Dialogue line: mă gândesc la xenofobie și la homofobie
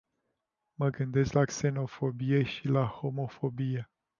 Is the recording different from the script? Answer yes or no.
no